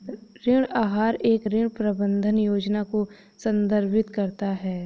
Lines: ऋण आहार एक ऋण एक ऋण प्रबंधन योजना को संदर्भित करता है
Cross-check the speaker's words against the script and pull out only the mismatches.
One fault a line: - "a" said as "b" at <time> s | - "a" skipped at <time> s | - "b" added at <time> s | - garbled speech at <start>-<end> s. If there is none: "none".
- "एक ऋण" skipped at 1.7 s